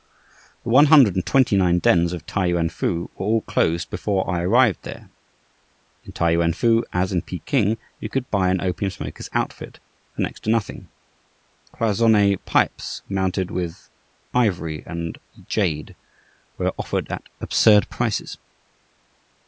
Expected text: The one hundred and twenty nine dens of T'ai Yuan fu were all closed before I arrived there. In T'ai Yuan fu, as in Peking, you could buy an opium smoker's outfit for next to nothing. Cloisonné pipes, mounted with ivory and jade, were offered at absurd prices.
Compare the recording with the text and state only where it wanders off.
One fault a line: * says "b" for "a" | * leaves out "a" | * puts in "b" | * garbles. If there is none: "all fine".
all fine